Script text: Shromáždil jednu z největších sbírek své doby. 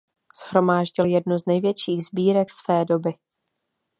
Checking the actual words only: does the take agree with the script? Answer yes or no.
yes